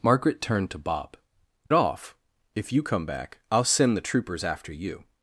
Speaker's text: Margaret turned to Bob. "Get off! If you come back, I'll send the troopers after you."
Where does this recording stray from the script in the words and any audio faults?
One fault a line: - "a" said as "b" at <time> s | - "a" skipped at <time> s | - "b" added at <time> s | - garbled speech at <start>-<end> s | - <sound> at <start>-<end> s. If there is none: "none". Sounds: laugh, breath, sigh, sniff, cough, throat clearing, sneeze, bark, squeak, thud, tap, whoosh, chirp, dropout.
- "Get" skipped at 1.1 s